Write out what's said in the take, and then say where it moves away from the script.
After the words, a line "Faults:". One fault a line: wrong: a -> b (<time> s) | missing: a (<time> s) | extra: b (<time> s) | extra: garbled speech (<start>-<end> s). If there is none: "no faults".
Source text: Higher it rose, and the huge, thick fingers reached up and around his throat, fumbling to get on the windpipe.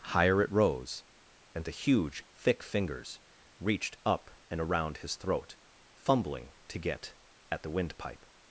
Higher it rose, and the huge, thick fingers reached up and around his throat, fumbling to get at the windpipe.
Faults:
wrong: on -> at (7.5 s)